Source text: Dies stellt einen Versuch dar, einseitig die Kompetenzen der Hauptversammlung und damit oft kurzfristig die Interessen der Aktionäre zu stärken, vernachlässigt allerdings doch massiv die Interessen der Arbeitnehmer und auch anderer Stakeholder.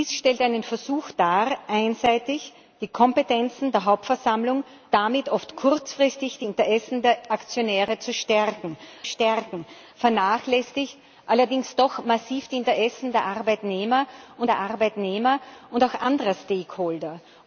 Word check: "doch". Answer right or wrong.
right